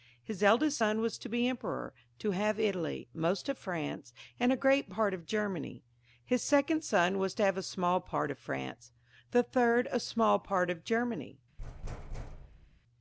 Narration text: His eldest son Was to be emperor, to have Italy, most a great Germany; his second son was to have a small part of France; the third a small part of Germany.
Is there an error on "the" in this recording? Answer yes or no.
no